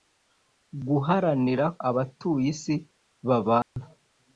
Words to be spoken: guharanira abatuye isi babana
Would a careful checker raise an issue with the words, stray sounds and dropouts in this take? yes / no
yes